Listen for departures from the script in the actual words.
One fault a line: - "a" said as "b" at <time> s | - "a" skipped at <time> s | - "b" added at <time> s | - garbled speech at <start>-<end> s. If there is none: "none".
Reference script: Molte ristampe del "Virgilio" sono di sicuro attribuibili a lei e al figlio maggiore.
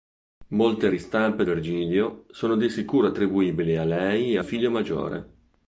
- "del" skipped at 1.4 s
- "al" skipped at 4.4 s